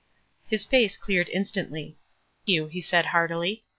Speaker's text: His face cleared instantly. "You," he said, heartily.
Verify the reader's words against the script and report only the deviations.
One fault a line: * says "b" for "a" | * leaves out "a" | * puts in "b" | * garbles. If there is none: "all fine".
all fine